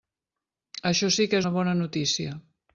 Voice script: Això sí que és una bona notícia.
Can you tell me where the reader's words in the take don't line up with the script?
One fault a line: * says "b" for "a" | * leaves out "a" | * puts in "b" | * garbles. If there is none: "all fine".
* leaves out "és"